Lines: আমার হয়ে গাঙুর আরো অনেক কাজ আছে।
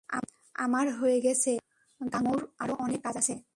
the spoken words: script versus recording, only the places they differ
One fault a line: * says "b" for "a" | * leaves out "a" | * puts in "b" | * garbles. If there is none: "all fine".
* puts in "গেছে"